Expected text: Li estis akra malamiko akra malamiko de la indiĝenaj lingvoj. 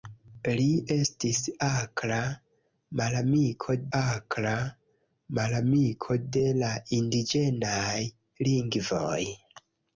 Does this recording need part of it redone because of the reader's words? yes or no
no